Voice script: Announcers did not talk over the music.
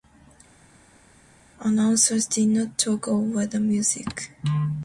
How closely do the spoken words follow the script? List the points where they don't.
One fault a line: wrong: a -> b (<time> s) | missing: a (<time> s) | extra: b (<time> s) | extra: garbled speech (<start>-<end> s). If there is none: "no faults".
no faults